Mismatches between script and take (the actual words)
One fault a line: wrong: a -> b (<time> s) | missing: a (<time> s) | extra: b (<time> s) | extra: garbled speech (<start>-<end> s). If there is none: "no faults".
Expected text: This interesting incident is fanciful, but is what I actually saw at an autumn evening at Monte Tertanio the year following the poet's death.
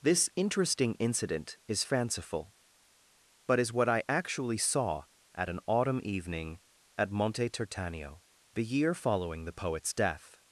no faults